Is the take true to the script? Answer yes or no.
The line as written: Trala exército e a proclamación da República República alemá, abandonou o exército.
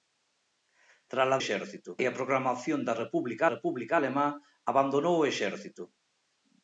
yes